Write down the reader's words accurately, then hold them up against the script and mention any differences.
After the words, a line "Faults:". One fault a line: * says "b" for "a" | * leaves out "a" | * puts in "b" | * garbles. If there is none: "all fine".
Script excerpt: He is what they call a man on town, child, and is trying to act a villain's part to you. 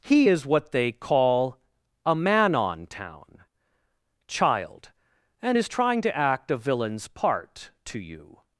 He is what they call a man on town, child, and is trying to act a villain's part to you.
Faults:
all fine